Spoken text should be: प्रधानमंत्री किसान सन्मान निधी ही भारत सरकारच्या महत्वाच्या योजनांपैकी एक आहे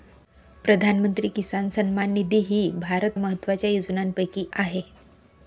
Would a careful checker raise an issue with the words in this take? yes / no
yes